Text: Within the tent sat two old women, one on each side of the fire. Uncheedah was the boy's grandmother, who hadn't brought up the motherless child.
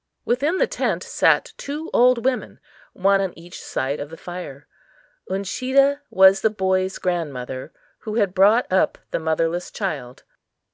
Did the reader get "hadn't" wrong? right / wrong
wrong